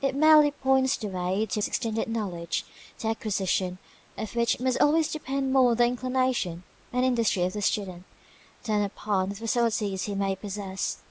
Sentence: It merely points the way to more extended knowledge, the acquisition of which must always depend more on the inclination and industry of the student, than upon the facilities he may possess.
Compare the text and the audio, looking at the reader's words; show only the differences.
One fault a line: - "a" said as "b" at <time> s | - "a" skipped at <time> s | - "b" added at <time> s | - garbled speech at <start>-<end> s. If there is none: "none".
- "more" skipped at 1.6 s